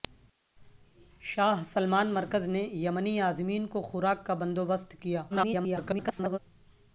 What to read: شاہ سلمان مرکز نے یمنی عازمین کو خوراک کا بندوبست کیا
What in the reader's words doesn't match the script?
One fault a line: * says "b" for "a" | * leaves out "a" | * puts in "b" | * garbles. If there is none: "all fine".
* garbles